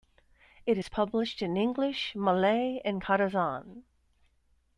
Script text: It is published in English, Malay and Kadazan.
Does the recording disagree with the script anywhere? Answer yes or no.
no